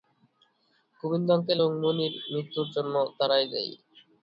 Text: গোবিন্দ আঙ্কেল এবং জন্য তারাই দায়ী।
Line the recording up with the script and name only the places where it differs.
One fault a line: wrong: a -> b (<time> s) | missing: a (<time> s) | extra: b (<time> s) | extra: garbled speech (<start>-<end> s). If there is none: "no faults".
extra: মণির মৃত্যুর (1.8 s)